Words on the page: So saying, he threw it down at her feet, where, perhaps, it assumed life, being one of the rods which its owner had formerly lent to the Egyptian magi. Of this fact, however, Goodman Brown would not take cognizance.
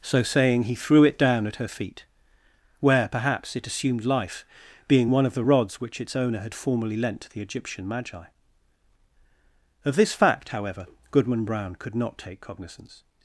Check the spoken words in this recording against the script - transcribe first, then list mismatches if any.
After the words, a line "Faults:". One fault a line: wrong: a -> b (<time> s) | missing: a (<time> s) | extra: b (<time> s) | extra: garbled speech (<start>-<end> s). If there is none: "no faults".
So saying, he threw it down at her feet, where, perhaps, it assumed life, being one of the rods which its owner had formerly lent to the Egyptian magi. Of this fact, however, Goodman Brown could not take cognizance.
Faults:
wrong: would -> could (11.8 s)